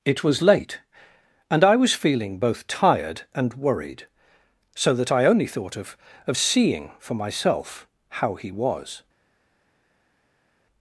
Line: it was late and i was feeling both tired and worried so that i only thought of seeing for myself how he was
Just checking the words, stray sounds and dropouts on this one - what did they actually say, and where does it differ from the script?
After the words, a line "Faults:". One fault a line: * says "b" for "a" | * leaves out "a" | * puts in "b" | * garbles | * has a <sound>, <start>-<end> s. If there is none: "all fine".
it was late and i was feeling both tired and worried so that i only thought of of seeing for myself how he was
Faults:
* puts in "of"